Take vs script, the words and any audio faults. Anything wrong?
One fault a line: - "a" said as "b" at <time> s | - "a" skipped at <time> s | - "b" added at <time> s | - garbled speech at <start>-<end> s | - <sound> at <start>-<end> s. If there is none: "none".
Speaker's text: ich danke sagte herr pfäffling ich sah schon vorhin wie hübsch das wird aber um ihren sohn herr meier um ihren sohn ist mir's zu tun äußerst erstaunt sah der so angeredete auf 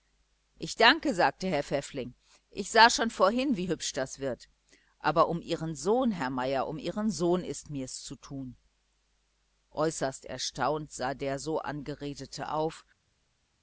none